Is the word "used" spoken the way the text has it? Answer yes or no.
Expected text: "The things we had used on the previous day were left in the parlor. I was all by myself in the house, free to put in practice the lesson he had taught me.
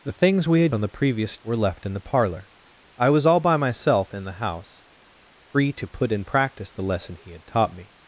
no